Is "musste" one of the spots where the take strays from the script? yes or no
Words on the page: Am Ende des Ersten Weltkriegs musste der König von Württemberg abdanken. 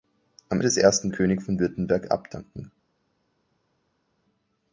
yes